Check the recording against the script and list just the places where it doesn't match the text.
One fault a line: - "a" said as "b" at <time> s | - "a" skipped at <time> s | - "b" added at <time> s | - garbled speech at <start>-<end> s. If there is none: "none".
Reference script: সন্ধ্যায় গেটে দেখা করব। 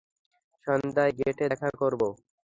none